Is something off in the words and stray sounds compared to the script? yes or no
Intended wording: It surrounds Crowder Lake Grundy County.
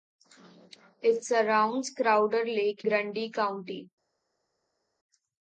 no